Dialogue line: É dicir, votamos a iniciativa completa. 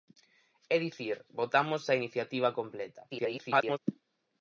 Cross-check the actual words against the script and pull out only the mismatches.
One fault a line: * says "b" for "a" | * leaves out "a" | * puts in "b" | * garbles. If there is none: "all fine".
* garbles